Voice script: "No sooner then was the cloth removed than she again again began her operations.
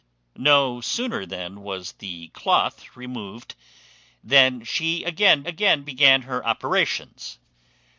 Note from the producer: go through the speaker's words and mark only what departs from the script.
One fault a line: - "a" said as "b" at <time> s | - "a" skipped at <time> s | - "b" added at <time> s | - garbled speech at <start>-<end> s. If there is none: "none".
none